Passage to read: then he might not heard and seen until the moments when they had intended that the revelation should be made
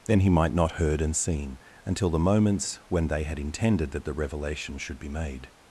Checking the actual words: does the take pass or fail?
pass